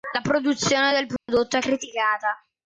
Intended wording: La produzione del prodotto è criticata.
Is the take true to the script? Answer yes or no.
yes